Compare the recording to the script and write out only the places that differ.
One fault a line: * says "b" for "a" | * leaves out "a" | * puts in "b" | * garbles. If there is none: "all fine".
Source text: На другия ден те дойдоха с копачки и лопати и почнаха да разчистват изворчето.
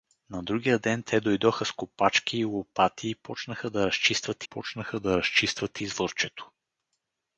* puts in "почнаха да разчистват"